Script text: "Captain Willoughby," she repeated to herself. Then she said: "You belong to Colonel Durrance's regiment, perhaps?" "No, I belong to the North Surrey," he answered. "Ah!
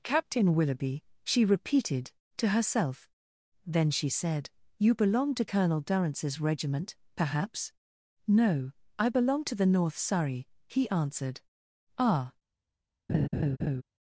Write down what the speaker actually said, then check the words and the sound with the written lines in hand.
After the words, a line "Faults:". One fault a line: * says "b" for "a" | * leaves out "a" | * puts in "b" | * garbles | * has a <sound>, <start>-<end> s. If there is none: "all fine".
"Captain Willoughby," she repeated to herself. Then she said: "You belong to Colonel Durrance's regiment, perhaps?" "No, I belong to the North Surrey," he answered. "Ah!
Faults:
* has a laugh, 13.1-13.8 s